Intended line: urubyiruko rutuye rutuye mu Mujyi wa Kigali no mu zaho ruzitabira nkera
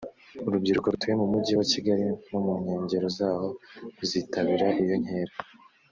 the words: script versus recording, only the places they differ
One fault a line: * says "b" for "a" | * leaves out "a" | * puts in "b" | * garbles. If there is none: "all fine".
* leaves out "rutuye"
* puts in "nkengero"
* puts in "iyo"